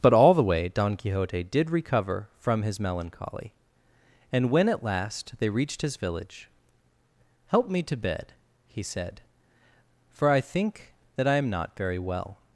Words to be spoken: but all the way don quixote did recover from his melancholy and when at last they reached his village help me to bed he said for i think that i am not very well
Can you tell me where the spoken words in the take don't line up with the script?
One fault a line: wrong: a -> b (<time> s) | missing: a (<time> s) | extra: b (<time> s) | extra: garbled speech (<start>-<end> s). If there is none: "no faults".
no faults